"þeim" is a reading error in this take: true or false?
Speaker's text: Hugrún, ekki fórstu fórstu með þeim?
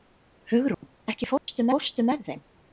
false